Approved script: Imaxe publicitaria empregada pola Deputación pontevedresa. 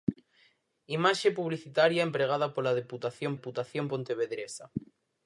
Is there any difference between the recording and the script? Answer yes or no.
yes